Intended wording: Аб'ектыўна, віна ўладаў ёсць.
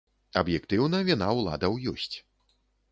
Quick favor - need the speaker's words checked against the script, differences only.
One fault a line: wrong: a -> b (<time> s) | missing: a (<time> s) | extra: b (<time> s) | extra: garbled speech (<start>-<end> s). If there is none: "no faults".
no faults